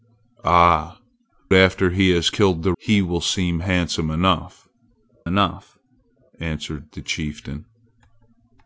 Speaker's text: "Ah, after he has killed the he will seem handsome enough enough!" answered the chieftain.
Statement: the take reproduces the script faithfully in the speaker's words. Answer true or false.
true